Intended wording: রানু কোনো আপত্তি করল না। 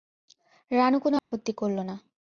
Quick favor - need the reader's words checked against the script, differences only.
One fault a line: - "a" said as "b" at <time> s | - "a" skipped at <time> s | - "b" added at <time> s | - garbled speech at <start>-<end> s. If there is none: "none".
none